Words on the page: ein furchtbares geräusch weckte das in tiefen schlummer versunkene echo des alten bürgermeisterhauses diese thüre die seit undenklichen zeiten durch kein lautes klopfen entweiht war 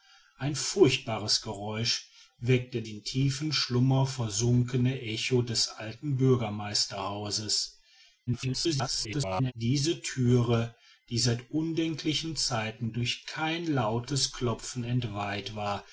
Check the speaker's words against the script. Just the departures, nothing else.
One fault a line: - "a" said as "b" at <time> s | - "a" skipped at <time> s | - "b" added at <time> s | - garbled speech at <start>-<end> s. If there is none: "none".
- "das" skipped at 2.8 s
- garbled speech at 8.3-9.5 s